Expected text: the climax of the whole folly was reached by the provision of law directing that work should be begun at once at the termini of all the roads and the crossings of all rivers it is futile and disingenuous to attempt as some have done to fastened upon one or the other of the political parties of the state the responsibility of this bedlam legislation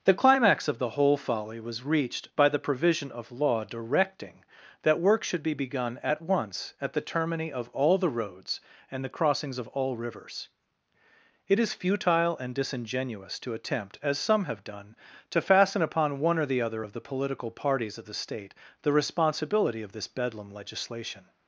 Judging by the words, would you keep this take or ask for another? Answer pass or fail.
fail